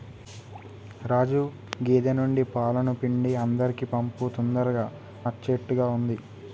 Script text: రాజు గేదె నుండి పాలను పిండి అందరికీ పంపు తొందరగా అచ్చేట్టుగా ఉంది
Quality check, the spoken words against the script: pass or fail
pass